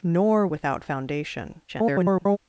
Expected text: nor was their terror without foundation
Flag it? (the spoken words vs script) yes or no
yes